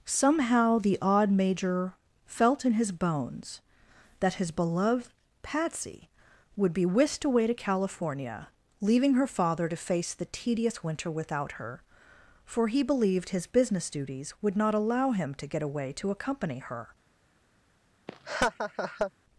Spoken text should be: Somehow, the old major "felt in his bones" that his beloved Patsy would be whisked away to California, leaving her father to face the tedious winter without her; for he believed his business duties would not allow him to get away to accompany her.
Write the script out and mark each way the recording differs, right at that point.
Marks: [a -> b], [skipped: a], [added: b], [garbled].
Somehow, the [old -> odd] major "felt in his bones" that his beloved Patsy would be whisked away to California, leaving her father to face the tedious winter without her; for he believed his business duties would not allow him to get away to accompany her.